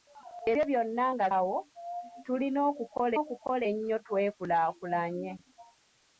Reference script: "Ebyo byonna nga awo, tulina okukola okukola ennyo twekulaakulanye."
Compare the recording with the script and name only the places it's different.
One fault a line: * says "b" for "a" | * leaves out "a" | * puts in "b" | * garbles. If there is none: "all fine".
all fine